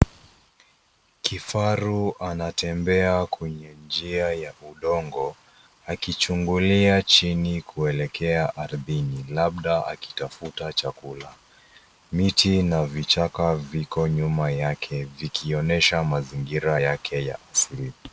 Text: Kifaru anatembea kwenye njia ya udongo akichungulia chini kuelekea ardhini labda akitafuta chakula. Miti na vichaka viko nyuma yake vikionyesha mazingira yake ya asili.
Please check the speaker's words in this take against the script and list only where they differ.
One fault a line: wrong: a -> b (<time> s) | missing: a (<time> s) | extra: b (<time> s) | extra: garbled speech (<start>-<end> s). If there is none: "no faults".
no faults